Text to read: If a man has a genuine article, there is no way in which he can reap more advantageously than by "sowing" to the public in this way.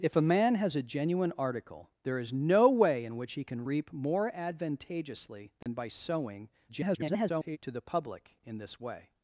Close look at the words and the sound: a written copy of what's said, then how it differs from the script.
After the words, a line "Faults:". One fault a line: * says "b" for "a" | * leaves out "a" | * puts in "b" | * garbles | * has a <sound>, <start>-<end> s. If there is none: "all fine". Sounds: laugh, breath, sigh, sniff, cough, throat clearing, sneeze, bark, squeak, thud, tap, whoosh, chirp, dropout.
If a man has a genuine article, there is no way in which he can reap more advantageously than by "sowing" [garbled] to the public in this way.
Faults:
* has a dropout, 5.6-5.7 s
* garbles